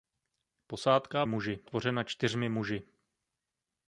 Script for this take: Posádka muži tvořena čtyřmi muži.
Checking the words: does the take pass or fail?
pass